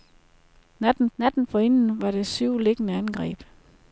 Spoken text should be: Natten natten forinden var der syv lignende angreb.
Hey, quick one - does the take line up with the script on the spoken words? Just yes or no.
yes